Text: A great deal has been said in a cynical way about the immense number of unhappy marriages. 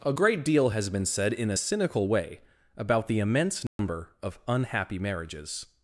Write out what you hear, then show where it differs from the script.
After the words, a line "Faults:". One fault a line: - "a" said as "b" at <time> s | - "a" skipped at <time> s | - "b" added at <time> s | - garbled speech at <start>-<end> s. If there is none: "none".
A great deal has been said in a cynical way about the immense number of unhappy marriages.
Faults:
none